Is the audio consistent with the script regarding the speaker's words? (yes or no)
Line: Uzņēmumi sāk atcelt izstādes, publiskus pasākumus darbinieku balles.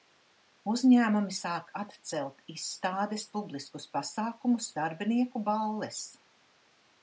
yes